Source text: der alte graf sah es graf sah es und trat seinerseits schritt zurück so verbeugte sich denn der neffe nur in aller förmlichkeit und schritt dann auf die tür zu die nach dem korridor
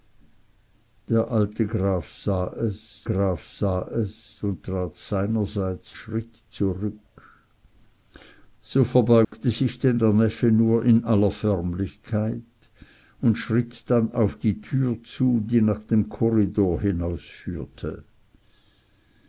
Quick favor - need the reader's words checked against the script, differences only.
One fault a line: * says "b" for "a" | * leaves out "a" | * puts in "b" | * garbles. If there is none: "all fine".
all fine